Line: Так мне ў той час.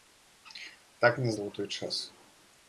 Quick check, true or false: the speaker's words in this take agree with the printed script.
true